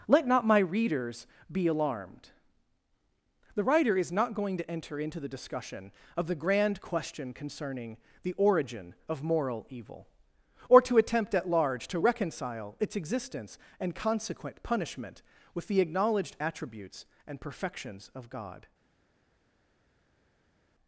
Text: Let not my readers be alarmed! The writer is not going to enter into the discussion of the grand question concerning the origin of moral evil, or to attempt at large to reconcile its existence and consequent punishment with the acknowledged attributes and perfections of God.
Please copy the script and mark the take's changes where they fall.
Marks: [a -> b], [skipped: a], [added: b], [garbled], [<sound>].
Let not my readers be alarmed! The writer is not going to enter into the discussion of the grand question concerning the origin of moral evil, or to attempt at large to reconcile its existence and consequent punishment with the acknowledged attributes and perfections of God.